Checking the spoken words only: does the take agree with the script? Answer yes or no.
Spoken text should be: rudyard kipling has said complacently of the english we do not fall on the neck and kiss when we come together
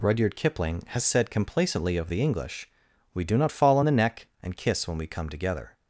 yes